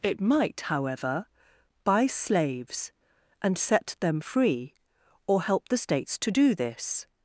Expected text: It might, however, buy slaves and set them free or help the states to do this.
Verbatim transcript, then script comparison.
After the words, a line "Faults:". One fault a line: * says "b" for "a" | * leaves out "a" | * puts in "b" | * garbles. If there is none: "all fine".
It might, however, buy slaves and set them free or help the states to do this.
Faults:
all fine